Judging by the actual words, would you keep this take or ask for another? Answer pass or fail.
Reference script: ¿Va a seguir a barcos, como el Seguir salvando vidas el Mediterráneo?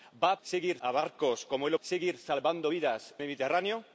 pass